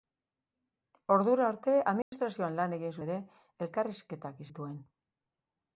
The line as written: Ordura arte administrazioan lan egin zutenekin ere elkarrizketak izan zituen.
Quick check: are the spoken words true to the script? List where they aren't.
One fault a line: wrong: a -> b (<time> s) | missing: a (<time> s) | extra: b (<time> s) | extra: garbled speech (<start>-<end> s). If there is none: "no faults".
missing: zutenekin (3.0 s)
missing: izan (4.4 s)